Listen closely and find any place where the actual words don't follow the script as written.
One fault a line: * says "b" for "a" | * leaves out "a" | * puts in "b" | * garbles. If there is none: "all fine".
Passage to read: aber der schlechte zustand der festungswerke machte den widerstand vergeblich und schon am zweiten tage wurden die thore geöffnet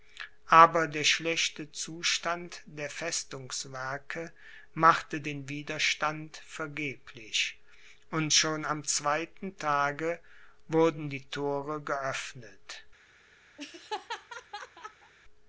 all fine